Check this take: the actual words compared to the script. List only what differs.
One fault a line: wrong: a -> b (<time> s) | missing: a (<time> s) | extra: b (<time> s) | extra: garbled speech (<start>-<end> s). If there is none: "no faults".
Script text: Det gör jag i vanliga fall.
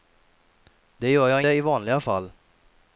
no faults